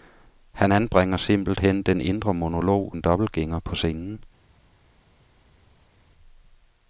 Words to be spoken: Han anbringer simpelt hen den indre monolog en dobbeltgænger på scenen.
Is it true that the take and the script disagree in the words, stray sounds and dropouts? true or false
false